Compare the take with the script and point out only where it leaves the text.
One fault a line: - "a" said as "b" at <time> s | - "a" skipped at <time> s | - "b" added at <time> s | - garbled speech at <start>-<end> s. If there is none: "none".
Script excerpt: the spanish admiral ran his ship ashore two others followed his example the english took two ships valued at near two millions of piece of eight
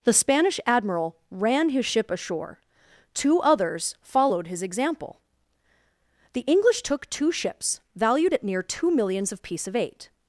none